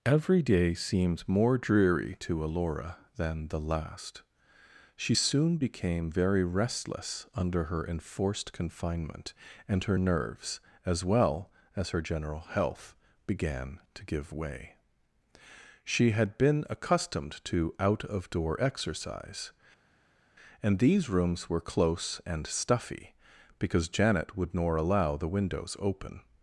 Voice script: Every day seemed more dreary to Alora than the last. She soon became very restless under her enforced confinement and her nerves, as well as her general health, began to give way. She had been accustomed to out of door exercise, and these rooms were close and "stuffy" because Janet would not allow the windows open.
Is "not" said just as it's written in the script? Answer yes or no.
no